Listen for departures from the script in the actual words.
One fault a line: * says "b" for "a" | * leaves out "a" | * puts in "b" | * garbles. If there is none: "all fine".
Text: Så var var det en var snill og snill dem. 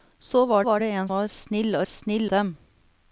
all fine